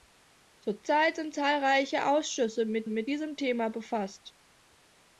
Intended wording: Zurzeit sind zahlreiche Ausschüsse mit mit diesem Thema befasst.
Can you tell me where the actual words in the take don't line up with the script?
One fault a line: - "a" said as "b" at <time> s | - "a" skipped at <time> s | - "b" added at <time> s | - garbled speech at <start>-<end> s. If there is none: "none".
none